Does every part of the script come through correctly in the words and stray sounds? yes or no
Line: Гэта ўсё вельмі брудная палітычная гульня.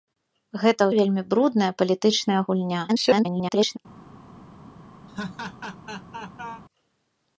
no